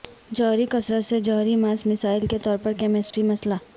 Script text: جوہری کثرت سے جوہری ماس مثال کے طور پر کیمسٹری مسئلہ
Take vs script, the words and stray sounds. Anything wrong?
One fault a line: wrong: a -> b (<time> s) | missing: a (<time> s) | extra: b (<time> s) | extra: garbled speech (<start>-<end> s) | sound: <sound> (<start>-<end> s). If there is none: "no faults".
sound: dropout (3.1-3.1 s)